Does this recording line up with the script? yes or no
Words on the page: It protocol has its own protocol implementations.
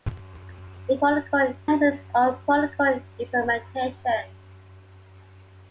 yes